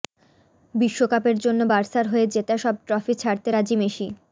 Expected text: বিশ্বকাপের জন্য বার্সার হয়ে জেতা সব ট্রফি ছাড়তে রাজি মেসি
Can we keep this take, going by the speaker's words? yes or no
yes